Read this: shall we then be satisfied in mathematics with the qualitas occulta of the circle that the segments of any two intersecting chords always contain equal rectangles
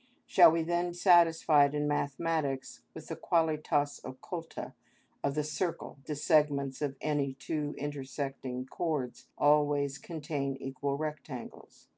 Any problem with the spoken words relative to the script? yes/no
yes